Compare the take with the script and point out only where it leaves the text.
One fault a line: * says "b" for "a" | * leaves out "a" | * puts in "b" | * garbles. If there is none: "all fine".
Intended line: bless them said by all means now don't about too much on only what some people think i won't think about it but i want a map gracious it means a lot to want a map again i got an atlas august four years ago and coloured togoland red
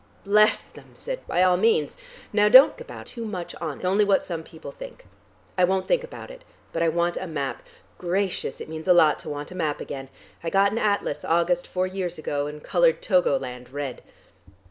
all fine